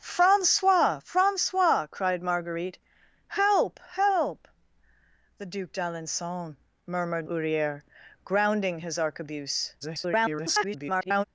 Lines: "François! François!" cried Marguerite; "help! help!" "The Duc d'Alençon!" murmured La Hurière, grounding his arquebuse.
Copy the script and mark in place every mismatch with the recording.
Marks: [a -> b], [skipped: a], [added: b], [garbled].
"François! François!" cried Marguerite; "help! help!" "The Duc d'Alençon!" murmured [skipped: La] Hurière, grounding his arquebuse. [garbled]